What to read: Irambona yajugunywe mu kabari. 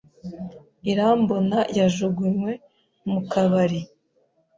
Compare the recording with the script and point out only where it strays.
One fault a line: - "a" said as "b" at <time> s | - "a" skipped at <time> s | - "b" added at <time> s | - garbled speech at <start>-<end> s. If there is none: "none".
none